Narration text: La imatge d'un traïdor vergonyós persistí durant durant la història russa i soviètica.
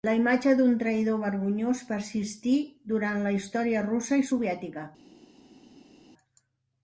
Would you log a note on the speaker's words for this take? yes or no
yes